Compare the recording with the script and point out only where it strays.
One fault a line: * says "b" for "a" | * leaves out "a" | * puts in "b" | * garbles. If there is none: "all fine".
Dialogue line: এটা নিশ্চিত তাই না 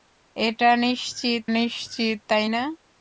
* puts in "নিশ্চিত"